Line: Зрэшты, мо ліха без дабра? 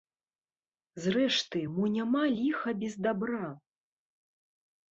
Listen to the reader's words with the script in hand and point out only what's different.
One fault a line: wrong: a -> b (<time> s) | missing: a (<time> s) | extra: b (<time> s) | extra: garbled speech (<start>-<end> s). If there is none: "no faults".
extra: няма (2.0 s)